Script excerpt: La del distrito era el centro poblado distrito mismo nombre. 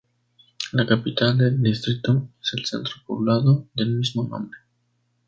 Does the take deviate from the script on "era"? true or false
true